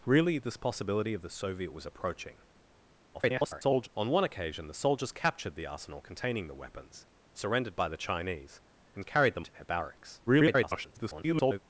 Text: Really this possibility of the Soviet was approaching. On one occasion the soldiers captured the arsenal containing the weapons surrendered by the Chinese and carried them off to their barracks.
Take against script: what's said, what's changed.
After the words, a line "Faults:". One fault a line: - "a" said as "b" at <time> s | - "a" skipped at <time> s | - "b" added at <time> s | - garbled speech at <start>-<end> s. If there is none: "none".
Really this possibility of the Soviet was approaching. [garbled] On one occasion the soldiers captured the arsenal containing the weapons surrendered by the Chinese and carried them to their barracks. [garbled]
Faults:
- garbled speech at 3.1-3.9 s
- "off" skipped at 9.5 s
- garbled speech at 10.3-11.6 s